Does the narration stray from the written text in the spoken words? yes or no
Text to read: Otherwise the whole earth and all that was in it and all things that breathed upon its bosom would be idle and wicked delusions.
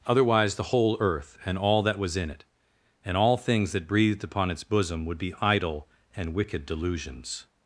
no